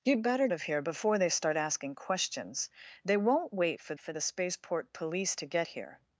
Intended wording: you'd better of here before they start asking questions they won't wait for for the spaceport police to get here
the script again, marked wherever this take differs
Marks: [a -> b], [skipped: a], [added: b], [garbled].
you'd better of here before they start asking questions they won't wait for for the spaceport police to get here